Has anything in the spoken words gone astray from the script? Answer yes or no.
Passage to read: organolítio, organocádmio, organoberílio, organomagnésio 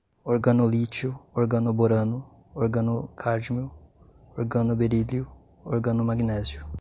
yes